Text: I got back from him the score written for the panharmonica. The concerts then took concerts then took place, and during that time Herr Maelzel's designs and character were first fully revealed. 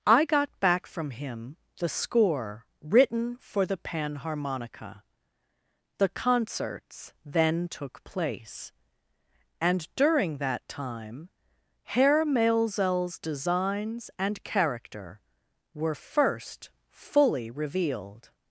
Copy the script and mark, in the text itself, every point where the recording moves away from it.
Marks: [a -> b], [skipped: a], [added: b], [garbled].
I got back from him the score written for the panharmonica. The concerts then took [skipped: concerts then took] place, and during that time Herr Maelzel's designs and character were first fully revealed.